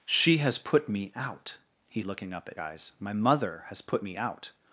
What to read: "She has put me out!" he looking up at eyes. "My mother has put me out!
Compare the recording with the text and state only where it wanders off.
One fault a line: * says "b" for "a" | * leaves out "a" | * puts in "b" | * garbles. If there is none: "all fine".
all fine